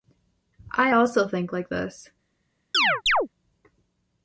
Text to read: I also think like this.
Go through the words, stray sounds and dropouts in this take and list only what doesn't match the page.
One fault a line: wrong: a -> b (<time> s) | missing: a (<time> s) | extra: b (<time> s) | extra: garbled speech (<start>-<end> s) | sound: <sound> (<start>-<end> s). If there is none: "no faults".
sound: chirp (2.7-3.3 s)